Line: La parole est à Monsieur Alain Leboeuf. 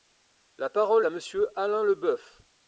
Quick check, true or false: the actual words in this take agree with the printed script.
false